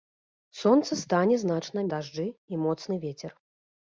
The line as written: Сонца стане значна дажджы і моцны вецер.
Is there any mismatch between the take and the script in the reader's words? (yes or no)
no